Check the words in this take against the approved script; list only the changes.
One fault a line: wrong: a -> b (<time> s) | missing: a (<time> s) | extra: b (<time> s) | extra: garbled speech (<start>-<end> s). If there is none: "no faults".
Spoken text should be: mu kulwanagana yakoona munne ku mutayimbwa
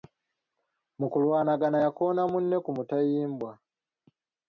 no faults